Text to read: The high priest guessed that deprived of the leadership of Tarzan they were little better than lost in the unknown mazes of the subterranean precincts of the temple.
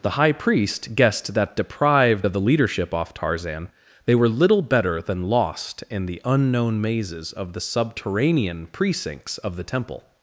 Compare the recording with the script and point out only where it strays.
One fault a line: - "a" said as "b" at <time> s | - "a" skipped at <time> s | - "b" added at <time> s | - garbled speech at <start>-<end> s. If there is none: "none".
- "of" said as "off" at 2.9 s